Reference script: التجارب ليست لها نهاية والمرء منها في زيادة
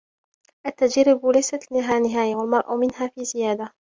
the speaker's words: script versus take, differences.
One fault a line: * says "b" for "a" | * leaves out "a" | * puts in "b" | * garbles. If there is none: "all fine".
all fine